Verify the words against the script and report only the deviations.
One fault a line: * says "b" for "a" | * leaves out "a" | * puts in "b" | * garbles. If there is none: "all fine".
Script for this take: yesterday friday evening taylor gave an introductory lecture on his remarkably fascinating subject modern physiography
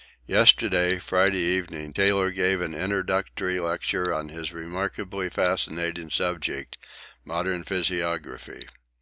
all fine